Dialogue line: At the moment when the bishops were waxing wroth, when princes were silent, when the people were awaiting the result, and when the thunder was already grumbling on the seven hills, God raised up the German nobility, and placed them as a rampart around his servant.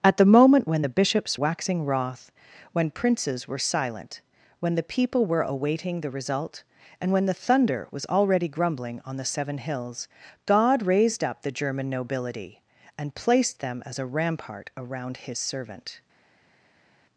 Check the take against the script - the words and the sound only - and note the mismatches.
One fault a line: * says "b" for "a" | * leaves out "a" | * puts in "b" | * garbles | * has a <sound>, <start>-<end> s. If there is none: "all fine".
* leaves out "were"